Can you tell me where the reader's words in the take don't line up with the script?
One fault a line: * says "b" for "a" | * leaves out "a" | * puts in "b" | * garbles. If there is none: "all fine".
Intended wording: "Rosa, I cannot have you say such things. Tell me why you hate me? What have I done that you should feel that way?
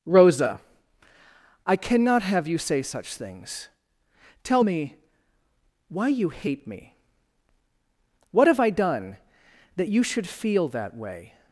all fine